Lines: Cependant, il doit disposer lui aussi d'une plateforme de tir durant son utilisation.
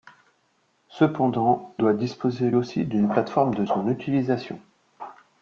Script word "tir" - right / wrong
wrong